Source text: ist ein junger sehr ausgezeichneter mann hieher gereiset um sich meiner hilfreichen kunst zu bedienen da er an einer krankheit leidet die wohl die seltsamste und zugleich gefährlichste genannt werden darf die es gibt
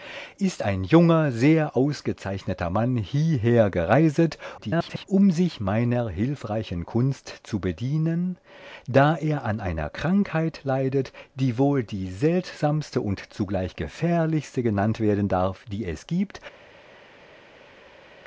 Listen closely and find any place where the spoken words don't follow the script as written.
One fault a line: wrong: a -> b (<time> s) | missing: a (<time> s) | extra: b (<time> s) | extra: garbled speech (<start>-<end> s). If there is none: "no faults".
extra: garbled speech (4.6-5.1 s)